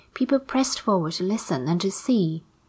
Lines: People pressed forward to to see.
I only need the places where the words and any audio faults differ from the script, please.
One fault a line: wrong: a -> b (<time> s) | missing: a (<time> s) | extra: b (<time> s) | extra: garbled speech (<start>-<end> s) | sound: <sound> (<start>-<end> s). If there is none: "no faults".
extra: listen and (1.2 s)